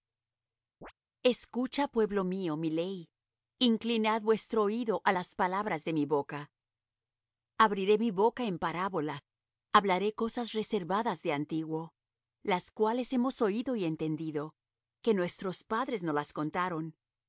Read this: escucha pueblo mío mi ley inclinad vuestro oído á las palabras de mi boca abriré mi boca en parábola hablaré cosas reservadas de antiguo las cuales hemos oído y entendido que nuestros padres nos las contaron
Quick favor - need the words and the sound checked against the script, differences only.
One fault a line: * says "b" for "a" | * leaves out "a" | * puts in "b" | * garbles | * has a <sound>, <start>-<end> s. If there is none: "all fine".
* has a chirp, 0.8-0.9 s